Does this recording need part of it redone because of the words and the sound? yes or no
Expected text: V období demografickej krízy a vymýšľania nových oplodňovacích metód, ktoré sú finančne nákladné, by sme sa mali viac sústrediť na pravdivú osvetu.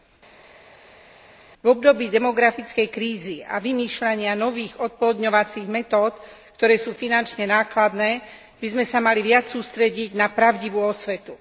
no